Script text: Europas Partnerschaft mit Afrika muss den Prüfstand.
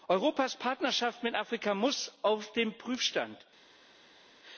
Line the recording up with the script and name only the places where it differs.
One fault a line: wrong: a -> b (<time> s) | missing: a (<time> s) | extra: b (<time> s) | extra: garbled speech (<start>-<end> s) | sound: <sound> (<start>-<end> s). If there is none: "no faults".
extra: auf (2.2 s)